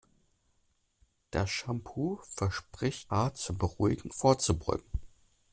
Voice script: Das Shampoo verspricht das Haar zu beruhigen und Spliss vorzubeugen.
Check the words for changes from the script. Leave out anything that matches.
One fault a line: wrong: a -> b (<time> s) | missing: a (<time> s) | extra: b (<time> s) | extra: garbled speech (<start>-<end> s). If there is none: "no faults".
missing: das (3.1 s)
missing: und Spliss (4.1 s)